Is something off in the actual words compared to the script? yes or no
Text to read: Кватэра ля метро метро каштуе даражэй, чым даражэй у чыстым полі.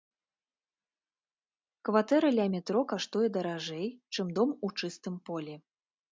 yes